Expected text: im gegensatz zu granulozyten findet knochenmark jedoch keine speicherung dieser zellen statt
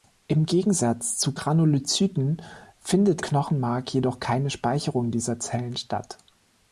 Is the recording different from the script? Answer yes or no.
no